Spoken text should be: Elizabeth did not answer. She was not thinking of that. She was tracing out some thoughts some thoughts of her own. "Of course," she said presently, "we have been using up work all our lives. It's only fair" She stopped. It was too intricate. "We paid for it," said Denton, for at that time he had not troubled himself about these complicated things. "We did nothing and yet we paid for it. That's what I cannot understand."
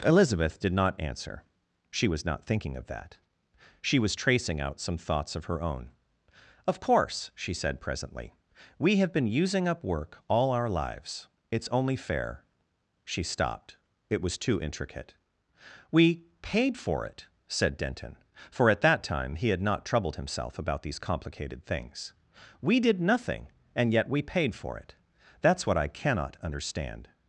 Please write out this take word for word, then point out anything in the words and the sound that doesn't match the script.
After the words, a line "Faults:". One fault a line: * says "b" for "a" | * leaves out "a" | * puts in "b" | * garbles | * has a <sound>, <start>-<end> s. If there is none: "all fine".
Elizabeth did not answer. She was not thinking of that. She was tracing out some thoughts of her own. "Of course," she said presently, "we have been using up work all our lives. It's only fair" She stopped. It was too intricate. "We paid for it," said Denton, for at that time he had not troubled himself about these complicated things. "We did nothing and yet we paid for it. That's what I cannot understand."
Faults:
* leaves out "some thoughts"